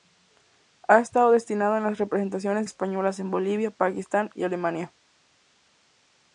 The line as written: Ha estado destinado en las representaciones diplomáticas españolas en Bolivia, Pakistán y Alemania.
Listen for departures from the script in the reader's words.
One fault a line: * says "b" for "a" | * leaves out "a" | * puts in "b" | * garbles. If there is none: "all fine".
* leaves out "diplomáticas"